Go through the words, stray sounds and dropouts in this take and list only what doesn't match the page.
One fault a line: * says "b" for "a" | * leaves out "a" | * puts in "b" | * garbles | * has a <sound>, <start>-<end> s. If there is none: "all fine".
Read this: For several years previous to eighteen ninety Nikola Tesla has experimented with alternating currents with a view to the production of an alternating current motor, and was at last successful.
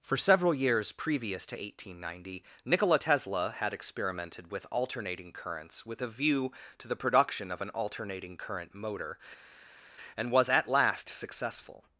* says "had" for "has"